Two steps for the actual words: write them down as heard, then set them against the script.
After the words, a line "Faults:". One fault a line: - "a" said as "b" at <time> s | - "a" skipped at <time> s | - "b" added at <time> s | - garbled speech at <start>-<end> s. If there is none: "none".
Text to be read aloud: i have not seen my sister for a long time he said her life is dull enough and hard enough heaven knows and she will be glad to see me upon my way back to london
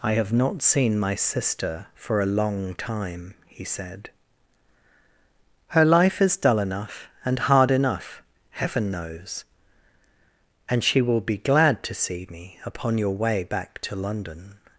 i have not seen my sister for a long time he said her life is dull enough and hard enough heaven knows and she will be glad to see me upon your way back to london
Faults:
- "my" said as "your" at 13.0 s